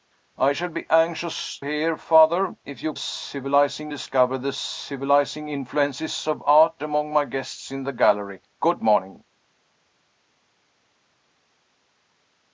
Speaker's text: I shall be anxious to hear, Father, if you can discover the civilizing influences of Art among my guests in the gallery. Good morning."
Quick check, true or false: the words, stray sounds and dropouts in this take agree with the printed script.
false